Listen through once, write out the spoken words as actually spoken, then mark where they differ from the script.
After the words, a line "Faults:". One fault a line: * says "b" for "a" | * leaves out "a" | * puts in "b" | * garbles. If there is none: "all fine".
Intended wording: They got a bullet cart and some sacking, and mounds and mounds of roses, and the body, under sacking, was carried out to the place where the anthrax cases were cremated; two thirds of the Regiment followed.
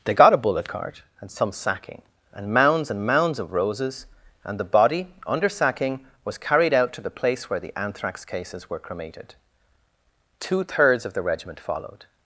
They got a bullet cart and some sacking, and mounds and mounds of roses, and the body, under sacking, was carried out to the place where the anthrax cases were cremated; two thirds of the Regiment followed.
Faults:
all fine